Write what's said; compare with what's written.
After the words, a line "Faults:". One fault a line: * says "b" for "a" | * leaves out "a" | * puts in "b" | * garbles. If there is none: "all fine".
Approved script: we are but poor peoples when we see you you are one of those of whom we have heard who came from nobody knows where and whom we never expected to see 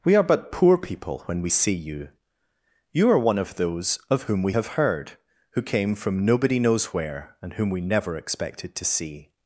we are but poor people when we see you you are one of those of whom we have heard who came from nobody knows where and whom we never expected to see
Faults:
* says "people" for "peoples"